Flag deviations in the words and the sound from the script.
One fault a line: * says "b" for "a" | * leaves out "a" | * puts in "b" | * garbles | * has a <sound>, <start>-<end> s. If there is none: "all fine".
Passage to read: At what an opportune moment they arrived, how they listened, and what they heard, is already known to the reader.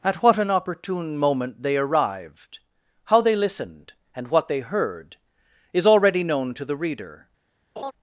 * has a laugh, 7.8-7.9 s